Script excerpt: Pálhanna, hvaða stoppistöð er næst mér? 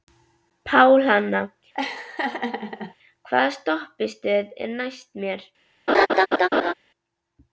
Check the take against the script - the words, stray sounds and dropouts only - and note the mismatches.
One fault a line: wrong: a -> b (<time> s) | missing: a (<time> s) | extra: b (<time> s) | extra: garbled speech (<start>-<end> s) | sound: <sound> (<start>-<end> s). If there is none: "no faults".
sound: laugh (1.7-2.9 s)
sound: laugh (5.9-6.7 s)